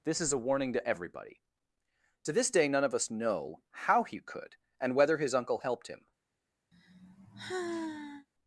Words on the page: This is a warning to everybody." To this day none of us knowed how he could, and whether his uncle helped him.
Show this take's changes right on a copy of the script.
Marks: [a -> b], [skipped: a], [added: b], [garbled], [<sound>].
This is a warning to everybody." To this day none of us [knowed -> know] how he could, and whether his uncle helped him. [sigh]